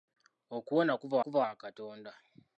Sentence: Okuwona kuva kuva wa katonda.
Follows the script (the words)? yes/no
yes